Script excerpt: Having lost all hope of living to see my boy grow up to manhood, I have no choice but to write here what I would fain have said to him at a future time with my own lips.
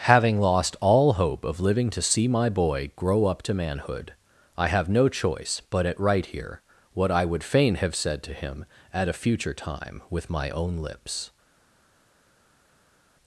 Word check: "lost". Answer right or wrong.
right